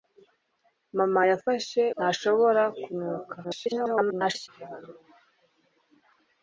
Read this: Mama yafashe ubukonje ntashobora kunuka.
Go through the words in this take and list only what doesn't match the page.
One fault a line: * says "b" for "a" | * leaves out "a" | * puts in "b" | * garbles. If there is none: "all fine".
* leaves out "ubukonje"
* garbles